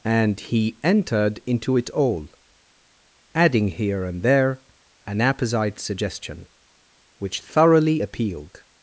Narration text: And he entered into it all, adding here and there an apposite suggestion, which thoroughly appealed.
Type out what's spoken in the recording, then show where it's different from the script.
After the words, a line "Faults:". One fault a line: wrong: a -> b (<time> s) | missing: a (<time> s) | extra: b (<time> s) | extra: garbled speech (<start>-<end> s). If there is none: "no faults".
And he entered into it all, adding here and there an apposite suggestion, which thoroughly appealed.
Faults:
no faults